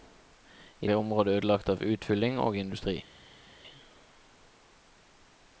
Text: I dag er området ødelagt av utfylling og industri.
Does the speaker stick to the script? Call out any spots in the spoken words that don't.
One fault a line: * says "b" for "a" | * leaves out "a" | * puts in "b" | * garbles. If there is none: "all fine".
* leaves out "dag"